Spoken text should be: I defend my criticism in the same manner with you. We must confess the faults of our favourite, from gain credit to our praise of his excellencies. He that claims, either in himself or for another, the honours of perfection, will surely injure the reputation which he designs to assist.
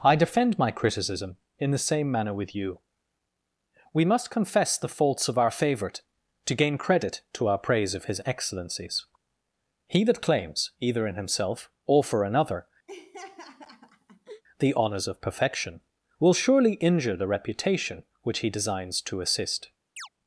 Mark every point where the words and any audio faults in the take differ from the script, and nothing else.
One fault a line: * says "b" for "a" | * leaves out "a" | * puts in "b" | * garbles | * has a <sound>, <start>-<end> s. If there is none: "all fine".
* says "to" for "from"
* has a laugh, 12.9-14.4 s
* has a chirp, 20.0-20.1 s